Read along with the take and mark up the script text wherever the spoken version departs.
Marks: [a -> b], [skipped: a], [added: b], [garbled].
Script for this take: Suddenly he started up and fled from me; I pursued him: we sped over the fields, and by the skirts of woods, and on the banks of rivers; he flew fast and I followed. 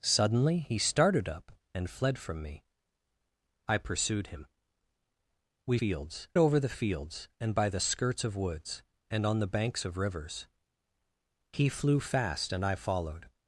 Suddenly he started up and fled from me; I pursued him: we [sped -> fields] over the fields, and by the skirts of woods, and on the banks of rivers; he flew fast and I followed.